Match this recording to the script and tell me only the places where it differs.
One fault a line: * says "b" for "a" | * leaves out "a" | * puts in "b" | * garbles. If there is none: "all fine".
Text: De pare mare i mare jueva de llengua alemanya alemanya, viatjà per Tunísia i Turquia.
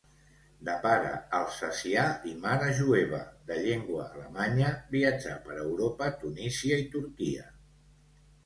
* says "alsacià" for "mare"
* leaves out "alemanya"
* puts in "Europa"